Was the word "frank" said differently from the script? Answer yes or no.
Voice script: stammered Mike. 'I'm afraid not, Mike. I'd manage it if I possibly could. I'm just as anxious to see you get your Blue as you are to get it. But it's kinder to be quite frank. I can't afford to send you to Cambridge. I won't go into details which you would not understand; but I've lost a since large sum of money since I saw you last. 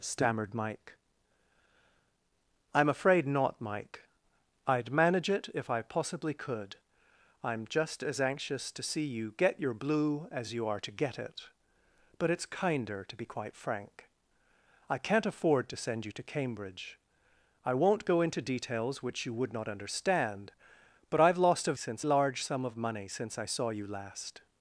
no